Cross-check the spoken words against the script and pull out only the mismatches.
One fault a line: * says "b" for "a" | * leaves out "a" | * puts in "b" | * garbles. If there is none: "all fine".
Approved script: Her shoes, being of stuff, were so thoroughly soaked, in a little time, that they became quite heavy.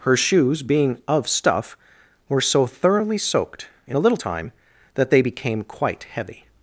all fine